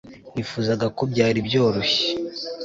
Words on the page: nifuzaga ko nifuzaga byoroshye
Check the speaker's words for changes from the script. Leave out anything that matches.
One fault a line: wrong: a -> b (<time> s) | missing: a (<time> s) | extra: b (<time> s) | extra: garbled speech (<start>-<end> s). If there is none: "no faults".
wrong: nifuzaga -> byari (1.1 s)